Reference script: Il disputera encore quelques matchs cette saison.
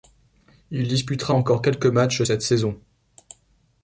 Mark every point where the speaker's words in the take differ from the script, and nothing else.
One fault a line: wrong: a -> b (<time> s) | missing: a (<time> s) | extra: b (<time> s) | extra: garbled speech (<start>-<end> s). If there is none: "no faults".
no faults